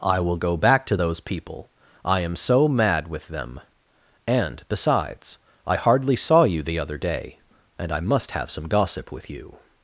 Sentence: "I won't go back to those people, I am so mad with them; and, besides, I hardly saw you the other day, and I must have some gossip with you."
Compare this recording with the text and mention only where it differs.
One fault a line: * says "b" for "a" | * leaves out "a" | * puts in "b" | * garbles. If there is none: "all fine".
* says "will" for "won't"